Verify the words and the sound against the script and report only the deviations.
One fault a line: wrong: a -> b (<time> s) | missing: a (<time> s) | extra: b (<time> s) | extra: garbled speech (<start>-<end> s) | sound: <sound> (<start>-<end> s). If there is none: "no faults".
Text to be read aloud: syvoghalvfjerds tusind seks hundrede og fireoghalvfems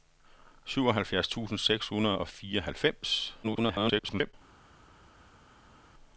extra: garbled speech (3.4-4.3 s)